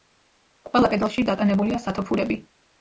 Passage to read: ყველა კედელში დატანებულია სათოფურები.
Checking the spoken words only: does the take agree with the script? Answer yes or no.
yes